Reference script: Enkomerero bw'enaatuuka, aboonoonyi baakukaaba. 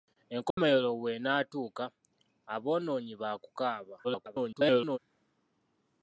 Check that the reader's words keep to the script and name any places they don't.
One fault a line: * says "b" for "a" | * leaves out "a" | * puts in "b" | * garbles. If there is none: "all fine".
* garbles